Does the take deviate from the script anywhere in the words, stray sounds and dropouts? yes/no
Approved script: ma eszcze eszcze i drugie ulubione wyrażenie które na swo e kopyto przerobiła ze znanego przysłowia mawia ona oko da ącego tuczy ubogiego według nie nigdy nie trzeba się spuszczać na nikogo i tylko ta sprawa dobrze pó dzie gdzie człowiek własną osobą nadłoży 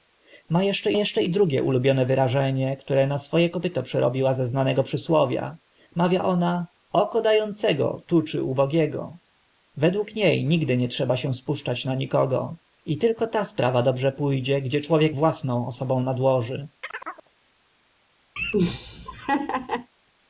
yes